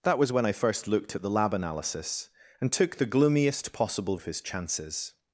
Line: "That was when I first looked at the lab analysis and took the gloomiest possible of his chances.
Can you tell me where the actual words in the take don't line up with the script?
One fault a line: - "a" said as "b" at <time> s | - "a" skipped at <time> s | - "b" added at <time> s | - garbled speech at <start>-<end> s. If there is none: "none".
none